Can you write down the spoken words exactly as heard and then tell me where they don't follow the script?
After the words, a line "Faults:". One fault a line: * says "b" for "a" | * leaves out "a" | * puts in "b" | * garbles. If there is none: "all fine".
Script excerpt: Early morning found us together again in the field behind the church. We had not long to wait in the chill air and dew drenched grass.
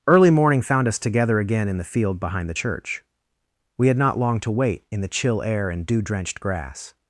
Early morning found us together again in the field behind the church. We had not long to wait in the chill air and dew drenched grass.
Faults:
all fine